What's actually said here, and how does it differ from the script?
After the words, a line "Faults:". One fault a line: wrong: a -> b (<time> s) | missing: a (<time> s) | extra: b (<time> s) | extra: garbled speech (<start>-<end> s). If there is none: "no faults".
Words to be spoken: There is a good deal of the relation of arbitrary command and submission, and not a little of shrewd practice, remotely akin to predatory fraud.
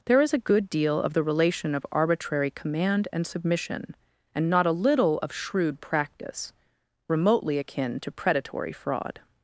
There is a good deal of the relation of arbitrary command and submission, and not a little of shrewd practice, remotely akin to predatory fraud.
Faults:
no faults